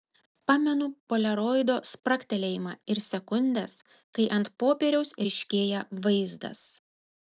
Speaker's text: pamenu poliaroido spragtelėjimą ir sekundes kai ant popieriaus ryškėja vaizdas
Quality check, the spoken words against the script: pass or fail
pass